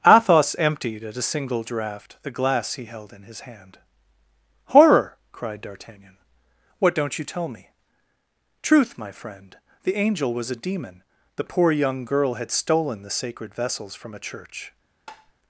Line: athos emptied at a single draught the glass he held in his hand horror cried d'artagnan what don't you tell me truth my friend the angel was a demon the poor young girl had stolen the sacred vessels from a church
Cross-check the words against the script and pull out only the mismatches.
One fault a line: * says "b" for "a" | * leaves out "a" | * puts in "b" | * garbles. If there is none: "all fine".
all fine